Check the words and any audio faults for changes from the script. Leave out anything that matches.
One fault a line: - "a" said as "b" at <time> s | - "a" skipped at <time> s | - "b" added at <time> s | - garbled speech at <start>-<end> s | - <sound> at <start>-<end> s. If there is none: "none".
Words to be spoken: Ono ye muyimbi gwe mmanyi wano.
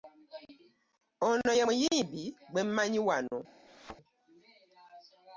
- thud at 3.7-4.0 s